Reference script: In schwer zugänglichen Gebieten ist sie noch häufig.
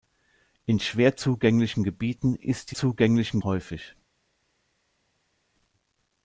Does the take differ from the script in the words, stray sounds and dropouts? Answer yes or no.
yes